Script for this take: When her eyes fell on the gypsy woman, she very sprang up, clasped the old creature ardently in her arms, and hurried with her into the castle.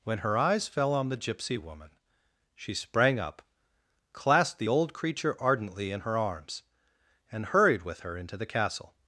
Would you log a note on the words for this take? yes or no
yes